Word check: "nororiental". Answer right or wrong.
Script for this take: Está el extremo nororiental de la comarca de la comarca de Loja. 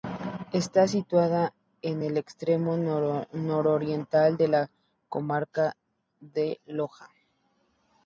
right